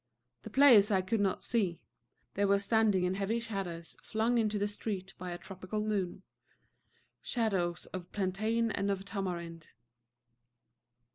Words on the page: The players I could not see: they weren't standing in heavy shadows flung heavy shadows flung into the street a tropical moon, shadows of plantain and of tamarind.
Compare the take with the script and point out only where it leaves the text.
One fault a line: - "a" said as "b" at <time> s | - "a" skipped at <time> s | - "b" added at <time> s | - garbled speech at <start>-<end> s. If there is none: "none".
- "weren't" said as "were" at 2.4 s
- "heavy shadows flung" skipped at 4.4 s
- "by" added at 5.2 s